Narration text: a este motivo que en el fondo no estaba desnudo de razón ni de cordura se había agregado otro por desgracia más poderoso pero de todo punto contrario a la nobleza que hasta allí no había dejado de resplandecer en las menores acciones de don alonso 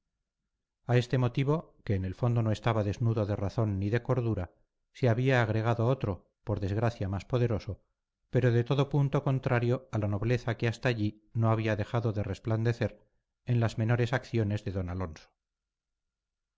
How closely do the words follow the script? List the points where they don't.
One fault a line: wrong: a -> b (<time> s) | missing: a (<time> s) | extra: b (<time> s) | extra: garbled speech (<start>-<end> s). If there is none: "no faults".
no faults